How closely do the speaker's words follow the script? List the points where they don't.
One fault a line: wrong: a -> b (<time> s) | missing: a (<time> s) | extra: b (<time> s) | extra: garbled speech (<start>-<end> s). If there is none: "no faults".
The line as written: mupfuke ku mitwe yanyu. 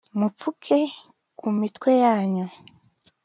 no faults